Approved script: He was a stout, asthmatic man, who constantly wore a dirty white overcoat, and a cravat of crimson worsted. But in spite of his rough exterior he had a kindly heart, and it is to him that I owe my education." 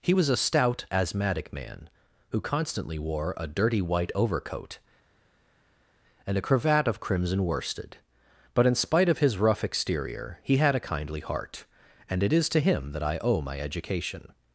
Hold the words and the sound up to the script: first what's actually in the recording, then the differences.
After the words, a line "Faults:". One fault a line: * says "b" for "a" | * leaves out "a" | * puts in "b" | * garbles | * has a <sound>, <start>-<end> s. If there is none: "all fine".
He was a stout, asthmatic man, who constantly wore a dirty white overcoat, and a cravat of crimson worsted. But in spite of his rough exterior he had a kindly heart, and it is to him that I owe my education."
Faults:
all fine